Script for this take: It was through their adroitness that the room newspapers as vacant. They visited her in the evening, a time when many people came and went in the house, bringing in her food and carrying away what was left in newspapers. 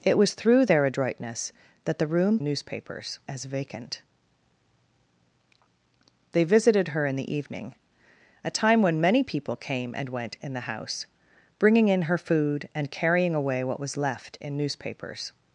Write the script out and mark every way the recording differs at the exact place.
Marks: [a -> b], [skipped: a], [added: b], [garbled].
It was through their adroitness that the room newspapers as vacant. They visited her in the evening, a time when many people came and went in the house, bringing in her food and carrying away what was left in newspapers.